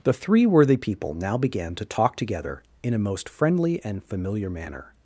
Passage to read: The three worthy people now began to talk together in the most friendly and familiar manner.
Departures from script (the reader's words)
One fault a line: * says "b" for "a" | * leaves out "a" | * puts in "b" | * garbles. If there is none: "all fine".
* says "a" for "the"